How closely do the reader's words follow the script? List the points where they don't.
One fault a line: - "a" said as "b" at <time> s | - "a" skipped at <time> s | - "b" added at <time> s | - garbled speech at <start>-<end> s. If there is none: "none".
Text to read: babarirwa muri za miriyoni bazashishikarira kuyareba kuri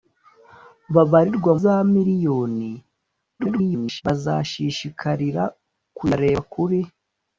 - "muri" skipped at 1.5 s
- garbled speech at 3.4-4.0 s